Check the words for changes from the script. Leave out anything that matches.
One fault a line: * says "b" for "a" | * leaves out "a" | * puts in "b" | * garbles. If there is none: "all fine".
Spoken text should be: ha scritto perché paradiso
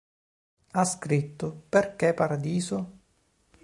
all fine